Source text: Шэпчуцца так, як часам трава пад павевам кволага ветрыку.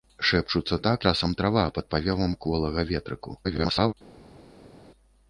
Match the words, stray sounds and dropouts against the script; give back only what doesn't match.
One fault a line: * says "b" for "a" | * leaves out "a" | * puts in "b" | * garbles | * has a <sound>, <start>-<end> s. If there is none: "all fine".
* leaves out "як"
* garbles